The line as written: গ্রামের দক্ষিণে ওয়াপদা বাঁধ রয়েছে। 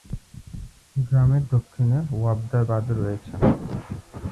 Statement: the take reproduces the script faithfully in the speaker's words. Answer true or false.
true